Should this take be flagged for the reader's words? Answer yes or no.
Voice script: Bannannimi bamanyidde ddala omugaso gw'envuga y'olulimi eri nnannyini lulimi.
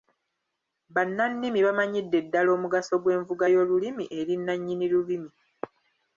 no